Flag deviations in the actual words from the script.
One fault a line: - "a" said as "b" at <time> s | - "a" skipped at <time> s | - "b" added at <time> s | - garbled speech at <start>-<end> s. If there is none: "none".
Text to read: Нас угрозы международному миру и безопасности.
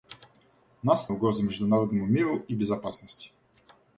none